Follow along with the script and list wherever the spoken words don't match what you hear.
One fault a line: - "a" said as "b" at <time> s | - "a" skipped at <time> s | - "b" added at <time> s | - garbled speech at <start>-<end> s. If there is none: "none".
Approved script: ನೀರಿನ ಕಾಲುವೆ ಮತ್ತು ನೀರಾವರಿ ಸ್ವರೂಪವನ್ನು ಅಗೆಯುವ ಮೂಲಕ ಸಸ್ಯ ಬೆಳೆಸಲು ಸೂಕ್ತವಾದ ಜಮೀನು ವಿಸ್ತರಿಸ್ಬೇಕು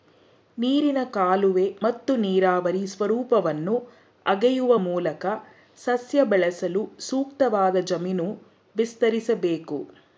none